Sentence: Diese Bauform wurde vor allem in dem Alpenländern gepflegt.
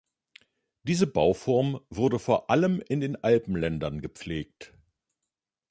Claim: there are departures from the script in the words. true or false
true